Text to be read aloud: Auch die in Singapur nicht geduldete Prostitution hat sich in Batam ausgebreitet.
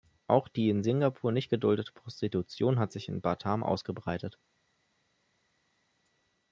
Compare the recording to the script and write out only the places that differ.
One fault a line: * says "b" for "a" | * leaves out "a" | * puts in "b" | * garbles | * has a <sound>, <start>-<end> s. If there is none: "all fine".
all fine